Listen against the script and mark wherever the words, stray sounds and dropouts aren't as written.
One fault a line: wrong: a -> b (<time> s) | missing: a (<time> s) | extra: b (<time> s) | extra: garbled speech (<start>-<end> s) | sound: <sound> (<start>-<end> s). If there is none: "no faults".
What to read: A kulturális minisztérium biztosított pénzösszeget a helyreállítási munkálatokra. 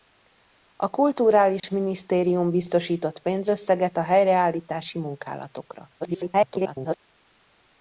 sound: dropout (1.6-1.6 s)
extra: garbled speech (6.0-7.0 s)